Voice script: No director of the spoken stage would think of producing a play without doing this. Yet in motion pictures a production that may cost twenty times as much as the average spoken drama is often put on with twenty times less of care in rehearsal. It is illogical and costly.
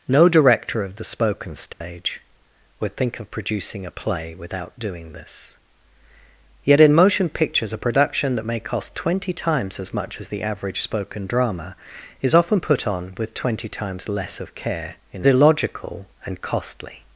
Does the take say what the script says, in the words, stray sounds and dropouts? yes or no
no